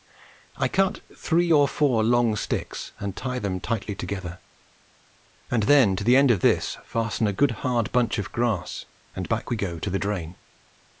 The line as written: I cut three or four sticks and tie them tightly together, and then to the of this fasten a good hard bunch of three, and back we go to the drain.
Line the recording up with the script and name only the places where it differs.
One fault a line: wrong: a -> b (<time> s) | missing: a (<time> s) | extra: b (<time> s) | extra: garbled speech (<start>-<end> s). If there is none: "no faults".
extra: long (2.0 s)
extra: end (6.2 s)
wrong: three -> grass (8.3 s)